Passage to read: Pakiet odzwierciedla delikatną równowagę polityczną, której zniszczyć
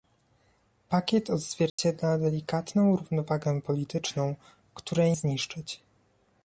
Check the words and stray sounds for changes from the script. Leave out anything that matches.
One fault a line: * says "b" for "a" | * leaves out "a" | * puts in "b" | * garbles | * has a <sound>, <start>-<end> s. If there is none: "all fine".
* has a dropout, 1.7-1.8 s